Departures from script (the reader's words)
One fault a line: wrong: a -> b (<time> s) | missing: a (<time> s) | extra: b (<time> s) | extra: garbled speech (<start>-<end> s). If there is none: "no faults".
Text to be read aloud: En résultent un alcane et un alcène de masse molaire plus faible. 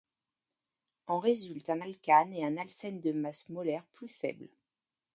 no faults